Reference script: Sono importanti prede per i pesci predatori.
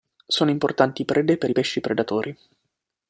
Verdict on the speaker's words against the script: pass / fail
pass